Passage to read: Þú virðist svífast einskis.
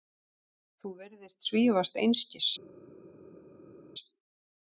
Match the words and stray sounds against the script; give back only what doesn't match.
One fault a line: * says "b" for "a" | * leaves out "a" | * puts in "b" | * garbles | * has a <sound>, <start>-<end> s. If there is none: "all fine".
all fine